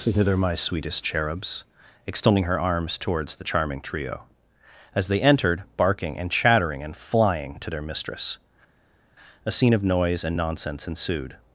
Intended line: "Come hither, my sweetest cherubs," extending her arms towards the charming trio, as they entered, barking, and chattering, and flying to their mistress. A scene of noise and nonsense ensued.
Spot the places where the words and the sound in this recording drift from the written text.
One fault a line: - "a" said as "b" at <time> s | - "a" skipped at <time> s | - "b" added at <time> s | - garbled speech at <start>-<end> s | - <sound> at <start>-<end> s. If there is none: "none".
- "Come" skipped at 0.1 s